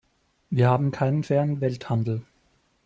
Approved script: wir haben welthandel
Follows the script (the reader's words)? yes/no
no